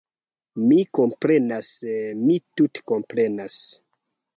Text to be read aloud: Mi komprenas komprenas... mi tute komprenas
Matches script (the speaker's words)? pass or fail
fail